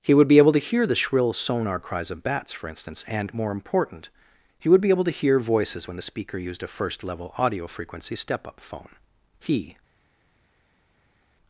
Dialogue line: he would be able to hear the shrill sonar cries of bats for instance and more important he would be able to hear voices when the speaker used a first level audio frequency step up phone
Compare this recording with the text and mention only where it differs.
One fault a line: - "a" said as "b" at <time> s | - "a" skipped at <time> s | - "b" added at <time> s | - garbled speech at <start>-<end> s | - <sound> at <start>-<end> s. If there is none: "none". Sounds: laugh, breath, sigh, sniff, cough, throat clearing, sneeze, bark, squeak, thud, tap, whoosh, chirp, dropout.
- "he" added at 9.4 s